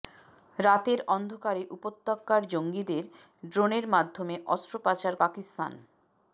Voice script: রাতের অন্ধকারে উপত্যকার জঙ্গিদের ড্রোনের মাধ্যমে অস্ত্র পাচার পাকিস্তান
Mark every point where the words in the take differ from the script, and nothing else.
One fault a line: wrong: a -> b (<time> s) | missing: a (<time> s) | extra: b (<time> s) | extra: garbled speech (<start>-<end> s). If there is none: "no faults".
no faults